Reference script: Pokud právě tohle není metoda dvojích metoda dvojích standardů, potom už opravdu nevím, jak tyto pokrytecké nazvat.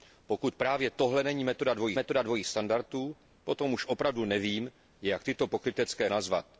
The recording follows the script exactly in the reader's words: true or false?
true